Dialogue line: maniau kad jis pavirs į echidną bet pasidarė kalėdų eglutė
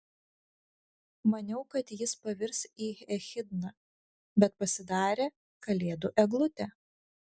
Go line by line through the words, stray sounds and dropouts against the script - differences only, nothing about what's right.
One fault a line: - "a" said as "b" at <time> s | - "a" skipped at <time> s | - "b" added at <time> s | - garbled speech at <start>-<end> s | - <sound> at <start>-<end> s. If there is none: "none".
none